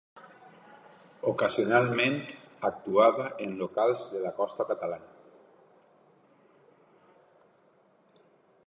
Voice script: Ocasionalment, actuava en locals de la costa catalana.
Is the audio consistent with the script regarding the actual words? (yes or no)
yes